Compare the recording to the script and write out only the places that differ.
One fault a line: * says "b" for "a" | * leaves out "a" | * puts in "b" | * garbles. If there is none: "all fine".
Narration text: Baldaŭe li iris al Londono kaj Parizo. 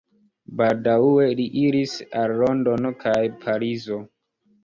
all fine